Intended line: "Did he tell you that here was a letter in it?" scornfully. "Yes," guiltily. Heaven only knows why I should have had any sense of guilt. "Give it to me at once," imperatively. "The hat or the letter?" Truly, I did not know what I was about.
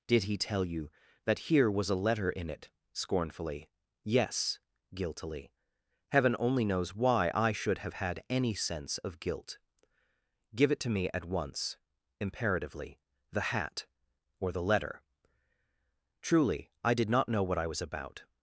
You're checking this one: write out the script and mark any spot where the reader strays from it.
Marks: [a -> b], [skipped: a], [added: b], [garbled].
"Did he tell you that here was a letter in it?" scornfully. "Yes," guiltily. Heaven only knows why I should have had any sense of guilt. "Give it to me at once," imperatively. "The hat or the letter?" Truly, I did not know what I was about.